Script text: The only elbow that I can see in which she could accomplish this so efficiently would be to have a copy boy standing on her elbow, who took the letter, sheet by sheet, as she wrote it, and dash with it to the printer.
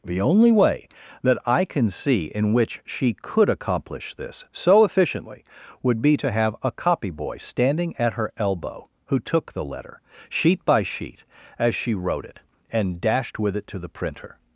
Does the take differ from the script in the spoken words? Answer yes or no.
yes